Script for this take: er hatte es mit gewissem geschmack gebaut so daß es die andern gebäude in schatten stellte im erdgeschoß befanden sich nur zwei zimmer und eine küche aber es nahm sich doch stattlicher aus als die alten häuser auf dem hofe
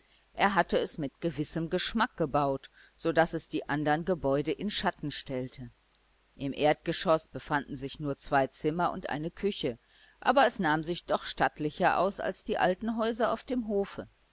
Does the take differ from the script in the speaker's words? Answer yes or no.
no